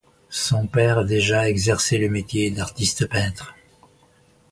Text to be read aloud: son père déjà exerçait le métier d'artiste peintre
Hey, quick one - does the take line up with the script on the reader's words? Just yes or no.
yes